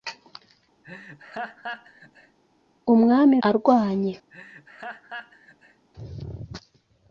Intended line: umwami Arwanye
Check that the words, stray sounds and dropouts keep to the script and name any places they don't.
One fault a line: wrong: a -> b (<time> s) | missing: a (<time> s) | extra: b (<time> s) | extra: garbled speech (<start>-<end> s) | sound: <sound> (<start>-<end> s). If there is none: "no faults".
sound: laugh (0.8-2.4 s)
sound: laugh (4.3-5.9 s)